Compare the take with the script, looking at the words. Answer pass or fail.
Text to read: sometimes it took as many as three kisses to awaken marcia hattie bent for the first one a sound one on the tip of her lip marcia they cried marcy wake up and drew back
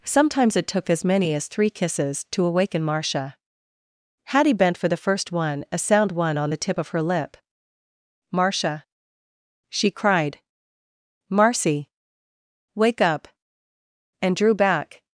fail